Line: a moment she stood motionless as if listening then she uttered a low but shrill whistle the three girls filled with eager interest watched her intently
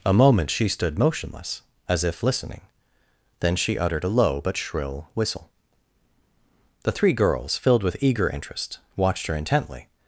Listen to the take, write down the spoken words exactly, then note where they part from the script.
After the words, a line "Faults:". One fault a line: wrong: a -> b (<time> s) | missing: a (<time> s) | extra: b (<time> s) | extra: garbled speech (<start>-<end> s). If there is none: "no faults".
a moment she stood motionless as if listening then she uttered a low but shrill whistle the three girls filled with eager interest watched her intently
Faults:
no faults